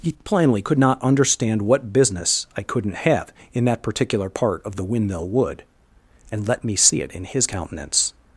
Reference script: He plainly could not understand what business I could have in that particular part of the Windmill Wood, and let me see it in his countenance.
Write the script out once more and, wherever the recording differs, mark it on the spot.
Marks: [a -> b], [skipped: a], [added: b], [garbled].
He plainly could not understand what business I [could -> couldn't] have in that particular part of the Windmill Wood, and let me see it in his countenance.